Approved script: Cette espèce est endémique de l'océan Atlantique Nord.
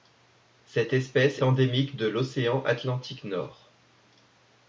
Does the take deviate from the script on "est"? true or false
true